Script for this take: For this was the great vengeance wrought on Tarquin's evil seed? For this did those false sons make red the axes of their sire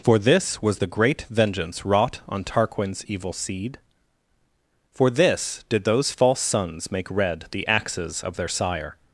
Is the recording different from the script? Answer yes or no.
no